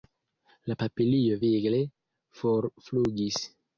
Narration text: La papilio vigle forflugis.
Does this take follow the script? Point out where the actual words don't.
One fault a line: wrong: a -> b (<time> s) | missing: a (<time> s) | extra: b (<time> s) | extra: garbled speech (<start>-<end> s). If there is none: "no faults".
no faults